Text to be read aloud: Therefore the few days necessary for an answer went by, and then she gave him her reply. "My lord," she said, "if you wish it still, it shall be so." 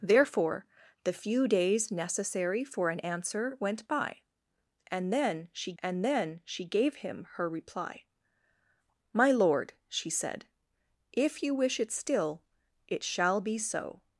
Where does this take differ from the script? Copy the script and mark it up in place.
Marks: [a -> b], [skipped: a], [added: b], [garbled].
Therefore the few days necessary for an answer went by, and then she [added: and then she] gave him her reply. "My lord," she said, "if you wish it still, it shall be so."